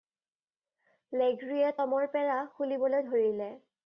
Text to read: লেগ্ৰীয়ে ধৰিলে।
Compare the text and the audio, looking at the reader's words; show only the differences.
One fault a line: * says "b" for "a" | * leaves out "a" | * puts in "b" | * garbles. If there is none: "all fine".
* puts in "টমৰ পেৰা খুলিবলৈ"